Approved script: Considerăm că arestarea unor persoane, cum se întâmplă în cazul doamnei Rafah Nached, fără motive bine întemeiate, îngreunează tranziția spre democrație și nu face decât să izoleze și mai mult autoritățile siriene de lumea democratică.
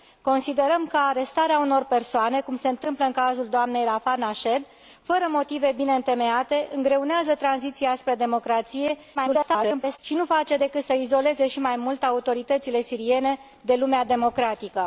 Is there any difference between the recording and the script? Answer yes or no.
yes